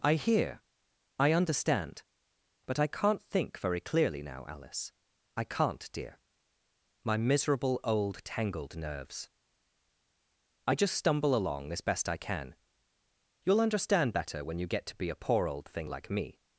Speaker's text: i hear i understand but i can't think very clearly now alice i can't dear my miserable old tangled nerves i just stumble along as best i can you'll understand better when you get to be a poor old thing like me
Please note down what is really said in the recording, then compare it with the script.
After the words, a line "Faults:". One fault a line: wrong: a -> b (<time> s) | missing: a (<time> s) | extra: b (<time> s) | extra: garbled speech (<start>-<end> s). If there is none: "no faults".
i hear i understand but i can't think very clearly now alice i can't dear my miserable old tangled nerves i just stumble along as best i can you'll understand better when you get to be a poor old thing like me
Faults:
no faults